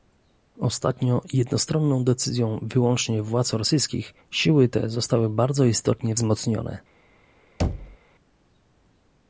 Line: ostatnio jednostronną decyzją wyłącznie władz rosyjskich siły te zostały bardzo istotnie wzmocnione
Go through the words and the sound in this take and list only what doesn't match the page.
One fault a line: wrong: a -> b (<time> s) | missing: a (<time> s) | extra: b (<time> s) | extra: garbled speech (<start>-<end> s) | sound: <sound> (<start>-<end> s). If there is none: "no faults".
sound: thud (7.6-8.0 s)